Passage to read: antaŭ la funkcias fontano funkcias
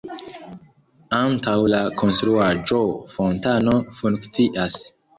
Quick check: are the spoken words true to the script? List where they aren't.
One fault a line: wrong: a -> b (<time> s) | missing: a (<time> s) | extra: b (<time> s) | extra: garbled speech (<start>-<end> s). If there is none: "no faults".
wrong: funkcias -> konstruaĵo (2.0 s)